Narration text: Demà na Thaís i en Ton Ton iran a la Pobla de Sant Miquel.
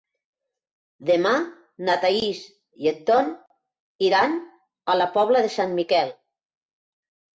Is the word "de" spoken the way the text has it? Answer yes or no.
yes